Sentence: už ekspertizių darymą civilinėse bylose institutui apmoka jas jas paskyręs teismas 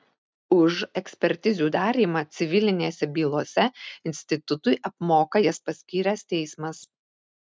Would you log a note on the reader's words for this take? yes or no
yes